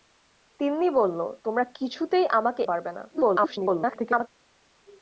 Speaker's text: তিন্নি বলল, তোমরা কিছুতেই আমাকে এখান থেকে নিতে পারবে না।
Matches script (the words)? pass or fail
fail